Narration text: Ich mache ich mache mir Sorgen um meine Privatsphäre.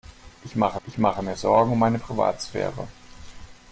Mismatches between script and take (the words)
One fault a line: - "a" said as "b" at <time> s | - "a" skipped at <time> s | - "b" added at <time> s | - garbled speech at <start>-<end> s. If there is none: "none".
none